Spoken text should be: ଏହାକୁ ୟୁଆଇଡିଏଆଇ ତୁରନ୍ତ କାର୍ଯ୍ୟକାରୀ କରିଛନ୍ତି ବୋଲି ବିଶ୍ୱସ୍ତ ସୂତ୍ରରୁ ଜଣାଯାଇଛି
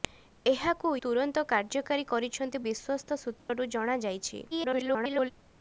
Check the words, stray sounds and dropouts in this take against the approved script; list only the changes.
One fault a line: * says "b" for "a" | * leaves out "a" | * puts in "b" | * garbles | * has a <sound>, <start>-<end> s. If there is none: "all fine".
* leaves out "ୟୁଆଇଡିଏଆଇ"
* leaves out "ବୋଲି"
* has a dropout, 3.4-3.5 s
* garbles